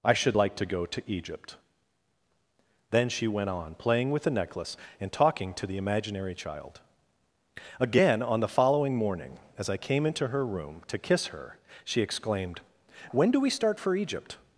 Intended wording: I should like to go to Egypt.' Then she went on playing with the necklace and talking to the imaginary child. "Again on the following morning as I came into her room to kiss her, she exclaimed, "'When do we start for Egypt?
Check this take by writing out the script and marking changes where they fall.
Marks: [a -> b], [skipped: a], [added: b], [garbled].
I should like to go to Egypt.' Then she went on playing with the necklace and talking to the imaginary child. "Again on the following morning as I came into her room to kiss her, she exclaimed, "'When do we start for Egypt?